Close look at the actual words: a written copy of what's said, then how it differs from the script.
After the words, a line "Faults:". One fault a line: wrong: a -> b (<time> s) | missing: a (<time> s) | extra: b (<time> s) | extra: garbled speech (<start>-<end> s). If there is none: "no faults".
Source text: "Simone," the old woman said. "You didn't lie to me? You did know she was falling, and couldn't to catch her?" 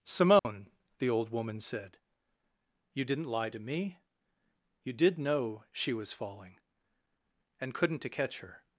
"Simone," the old woman said. "You didn't lie to me? You did know she was falling, and couldn't to catch her?"
Faults:
no faults